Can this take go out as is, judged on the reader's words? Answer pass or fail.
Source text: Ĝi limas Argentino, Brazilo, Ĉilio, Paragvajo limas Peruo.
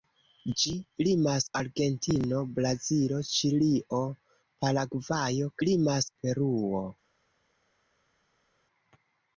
pass